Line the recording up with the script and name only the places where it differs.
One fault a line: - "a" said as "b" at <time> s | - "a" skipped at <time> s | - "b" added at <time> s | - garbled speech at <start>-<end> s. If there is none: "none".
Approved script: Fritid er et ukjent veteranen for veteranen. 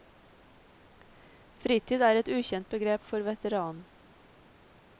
- "veteranen" said as "begrep" at 2.8 s